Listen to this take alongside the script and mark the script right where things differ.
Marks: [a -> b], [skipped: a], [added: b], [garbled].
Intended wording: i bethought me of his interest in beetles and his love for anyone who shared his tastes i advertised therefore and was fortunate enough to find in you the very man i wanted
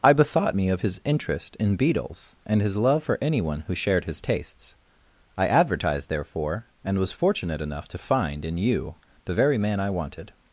i bethought me of his interest in beetles and his love for anyone who shared his tastes i advertised therefore and was fortunate enough to find in you the very man i wanted